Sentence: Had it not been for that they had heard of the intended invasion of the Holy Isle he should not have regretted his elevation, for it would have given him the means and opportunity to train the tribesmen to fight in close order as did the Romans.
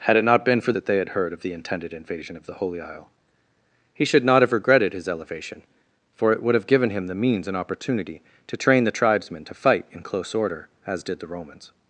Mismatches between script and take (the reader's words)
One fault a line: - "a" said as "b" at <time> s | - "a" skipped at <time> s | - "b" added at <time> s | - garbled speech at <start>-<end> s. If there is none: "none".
none